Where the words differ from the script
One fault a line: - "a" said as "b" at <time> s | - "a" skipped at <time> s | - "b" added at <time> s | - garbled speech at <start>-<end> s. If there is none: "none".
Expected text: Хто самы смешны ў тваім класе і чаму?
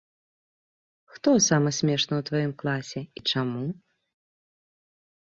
none